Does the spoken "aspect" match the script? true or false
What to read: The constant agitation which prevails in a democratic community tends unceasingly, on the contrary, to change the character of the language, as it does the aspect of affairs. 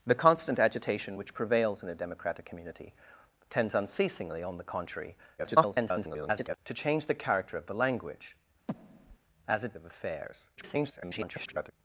false